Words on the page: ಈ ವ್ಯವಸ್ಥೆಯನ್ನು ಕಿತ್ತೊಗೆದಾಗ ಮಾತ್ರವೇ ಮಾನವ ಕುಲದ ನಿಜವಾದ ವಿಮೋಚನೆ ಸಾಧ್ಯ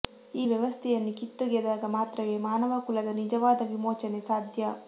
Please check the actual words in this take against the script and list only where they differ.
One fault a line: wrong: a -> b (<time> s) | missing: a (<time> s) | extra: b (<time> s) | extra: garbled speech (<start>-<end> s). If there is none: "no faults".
no faults